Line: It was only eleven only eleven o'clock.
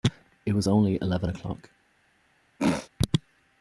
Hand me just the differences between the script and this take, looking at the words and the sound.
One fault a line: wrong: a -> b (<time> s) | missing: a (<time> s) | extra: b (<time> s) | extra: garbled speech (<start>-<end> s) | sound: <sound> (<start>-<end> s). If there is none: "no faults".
missing: only eleven (1.3 s)
sound: throat clearing (2.6-2.9 s)